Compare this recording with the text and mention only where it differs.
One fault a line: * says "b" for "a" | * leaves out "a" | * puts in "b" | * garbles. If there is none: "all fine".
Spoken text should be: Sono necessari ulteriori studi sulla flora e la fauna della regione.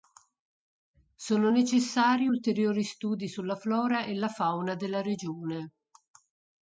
all fine